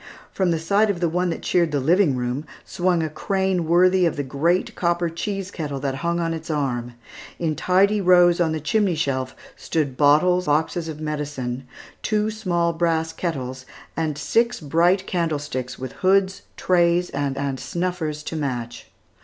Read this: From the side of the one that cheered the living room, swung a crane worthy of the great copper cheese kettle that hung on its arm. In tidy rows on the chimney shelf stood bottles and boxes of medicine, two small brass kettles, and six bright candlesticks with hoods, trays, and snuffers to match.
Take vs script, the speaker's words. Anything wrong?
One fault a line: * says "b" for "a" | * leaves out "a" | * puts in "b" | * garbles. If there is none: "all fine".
* leaves out "and"
* puts in "and"